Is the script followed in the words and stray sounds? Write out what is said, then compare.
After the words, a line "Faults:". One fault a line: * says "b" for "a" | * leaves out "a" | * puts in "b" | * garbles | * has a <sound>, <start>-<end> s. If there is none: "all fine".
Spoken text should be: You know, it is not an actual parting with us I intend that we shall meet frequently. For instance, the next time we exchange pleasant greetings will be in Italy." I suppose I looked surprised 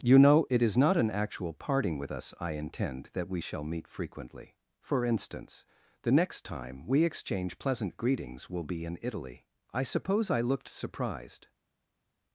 You know, it is not an actual parting with us I intend that we shall meet frequently. For instance, the next time we exchange pleasant greetings will be in Italy." I suppose I looked surprised
Faults:
all fine